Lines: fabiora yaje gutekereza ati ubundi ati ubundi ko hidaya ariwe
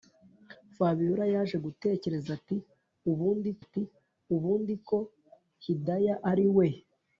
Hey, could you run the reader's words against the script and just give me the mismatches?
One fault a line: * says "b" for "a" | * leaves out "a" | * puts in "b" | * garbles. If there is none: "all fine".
all fine